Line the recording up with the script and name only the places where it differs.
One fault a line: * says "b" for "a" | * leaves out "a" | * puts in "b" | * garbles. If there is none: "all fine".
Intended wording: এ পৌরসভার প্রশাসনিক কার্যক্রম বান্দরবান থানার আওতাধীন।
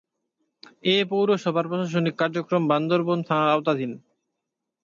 all fine